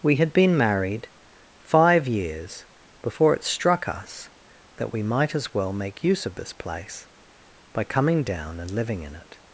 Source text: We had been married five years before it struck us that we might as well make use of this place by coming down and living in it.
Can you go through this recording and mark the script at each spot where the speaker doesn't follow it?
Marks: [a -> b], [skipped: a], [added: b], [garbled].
We had been married five years before it struck us that we might as well make use of this place by coming down and living in it.